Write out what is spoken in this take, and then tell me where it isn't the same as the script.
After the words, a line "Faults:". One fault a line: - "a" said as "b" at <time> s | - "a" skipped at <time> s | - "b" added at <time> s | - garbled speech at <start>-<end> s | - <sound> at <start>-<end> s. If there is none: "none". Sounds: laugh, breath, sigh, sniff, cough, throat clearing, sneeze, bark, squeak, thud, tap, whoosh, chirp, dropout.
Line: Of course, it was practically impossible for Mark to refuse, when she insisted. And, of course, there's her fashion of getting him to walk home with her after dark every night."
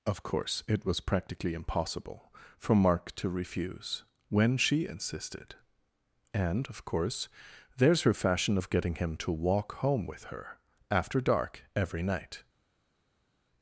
Of course, it was practically impossible for Mark to refuse, when she insisted. And, of course, there's her fashion of getting him to walk home with her after dark every night."
Faults:
none